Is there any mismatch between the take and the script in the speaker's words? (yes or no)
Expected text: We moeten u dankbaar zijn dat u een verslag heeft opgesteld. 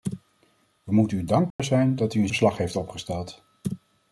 no